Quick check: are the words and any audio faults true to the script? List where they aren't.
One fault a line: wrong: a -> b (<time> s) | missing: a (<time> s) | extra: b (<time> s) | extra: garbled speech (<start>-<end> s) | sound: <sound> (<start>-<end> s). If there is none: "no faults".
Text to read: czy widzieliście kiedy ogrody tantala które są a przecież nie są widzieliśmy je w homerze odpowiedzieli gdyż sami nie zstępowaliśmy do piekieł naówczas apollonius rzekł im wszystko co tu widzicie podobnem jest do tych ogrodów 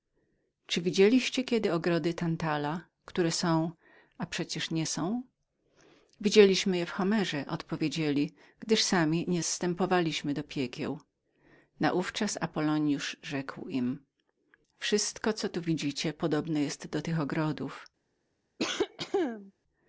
sound: cough (18.6-19.5 s)